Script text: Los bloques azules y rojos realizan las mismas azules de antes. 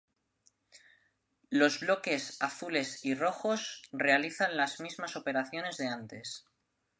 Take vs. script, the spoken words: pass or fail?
fail